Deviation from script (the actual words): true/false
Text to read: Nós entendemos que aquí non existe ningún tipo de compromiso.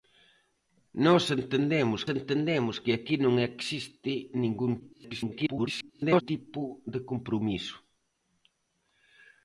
true